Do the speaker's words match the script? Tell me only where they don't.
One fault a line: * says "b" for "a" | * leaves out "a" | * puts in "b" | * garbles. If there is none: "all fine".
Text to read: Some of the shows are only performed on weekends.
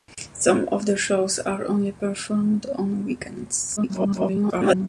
* garbles